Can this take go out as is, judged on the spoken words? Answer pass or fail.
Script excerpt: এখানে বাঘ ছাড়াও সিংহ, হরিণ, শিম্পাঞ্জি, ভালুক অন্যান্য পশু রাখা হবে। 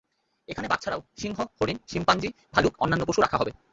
pass